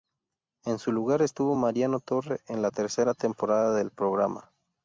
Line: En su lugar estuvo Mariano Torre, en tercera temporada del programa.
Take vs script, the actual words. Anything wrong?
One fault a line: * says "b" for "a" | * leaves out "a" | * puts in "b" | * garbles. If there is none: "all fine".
* puts in "la"